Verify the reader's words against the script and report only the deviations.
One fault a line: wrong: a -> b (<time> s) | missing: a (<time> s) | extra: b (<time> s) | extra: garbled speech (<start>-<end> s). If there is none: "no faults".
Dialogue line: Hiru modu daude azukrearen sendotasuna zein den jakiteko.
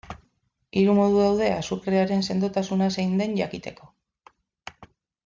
no faults